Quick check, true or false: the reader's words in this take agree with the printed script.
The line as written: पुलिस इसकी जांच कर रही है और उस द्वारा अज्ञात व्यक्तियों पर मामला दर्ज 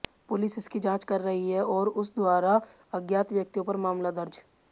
true